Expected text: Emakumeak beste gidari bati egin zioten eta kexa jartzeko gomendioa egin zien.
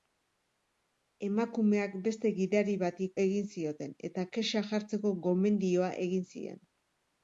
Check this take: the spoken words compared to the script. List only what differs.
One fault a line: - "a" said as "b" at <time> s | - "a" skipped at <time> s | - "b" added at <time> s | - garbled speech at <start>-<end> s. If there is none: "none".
none